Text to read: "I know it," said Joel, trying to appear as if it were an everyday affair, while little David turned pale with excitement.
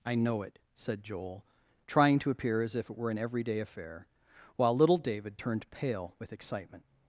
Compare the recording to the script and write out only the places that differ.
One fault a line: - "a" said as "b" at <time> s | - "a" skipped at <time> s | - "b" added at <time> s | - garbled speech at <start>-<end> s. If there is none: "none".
none